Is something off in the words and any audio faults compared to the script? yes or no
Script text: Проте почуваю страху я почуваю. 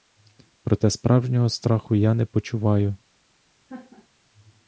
yes